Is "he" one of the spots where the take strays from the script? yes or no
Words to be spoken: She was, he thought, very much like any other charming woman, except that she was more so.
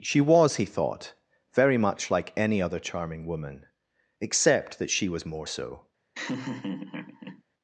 no